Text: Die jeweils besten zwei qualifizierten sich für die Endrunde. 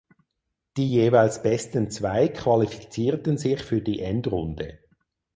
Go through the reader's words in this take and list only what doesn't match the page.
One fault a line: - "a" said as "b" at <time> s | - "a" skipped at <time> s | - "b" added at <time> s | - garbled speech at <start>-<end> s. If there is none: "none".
none